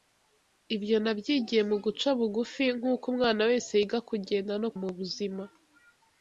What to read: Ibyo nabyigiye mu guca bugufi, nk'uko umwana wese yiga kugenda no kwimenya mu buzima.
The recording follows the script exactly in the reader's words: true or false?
false